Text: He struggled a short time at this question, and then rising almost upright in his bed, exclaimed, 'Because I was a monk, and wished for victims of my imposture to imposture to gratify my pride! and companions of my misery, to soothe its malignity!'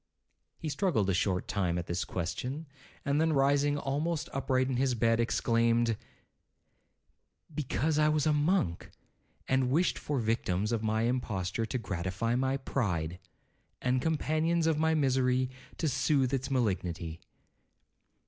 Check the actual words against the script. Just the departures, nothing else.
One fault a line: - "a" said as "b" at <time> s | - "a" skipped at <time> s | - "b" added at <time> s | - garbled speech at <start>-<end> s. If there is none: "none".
- "imposture to" skipped at 11.8 s